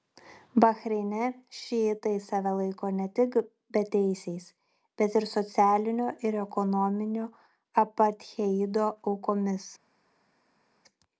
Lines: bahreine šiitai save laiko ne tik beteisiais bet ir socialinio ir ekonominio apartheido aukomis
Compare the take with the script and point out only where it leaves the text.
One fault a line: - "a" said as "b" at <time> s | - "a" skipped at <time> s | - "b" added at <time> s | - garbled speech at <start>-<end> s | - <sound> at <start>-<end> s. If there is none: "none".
none